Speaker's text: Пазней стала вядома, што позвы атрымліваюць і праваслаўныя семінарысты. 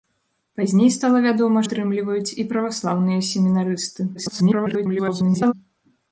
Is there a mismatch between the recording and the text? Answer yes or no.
yes